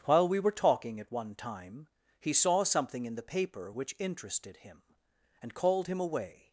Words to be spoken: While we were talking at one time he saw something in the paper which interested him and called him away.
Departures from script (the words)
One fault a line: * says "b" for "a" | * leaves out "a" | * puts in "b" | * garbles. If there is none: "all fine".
all fine